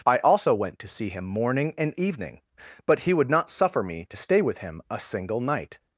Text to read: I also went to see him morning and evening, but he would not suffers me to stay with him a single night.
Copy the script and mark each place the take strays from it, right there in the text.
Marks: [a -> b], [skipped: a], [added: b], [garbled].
I also went to see him morning and evening, but he would not [suffers -> suffer] me to stay with him a single night.